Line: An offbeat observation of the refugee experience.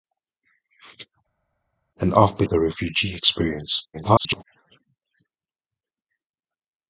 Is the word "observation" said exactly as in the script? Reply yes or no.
no